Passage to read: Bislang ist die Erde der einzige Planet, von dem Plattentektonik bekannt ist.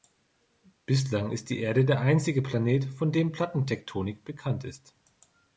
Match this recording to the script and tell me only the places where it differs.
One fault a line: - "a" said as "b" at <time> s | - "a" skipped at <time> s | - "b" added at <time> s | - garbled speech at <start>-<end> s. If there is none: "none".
none